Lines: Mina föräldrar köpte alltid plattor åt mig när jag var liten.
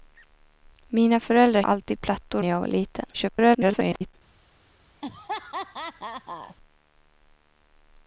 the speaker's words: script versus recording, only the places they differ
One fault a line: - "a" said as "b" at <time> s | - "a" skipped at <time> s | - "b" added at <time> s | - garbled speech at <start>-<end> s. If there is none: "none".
- "köpte" skipped at 1.6 s
- "åt mig" skipped at 2.4 s
- garbled speech at 3.1-4.1 s